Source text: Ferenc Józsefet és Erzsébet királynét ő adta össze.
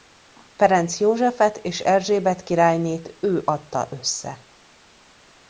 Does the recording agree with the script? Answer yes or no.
yes